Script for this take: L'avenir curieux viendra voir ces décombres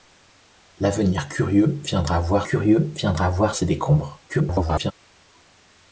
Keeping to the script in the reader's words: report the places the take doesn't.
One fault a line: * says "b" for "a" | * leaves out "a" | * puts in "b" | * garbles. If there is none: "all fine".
* puts in "curieux viendra voir"
* garbles